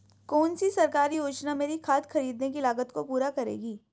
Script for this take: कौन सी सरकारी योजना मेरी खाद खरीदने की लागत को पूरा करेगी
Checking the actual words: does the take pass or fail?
pass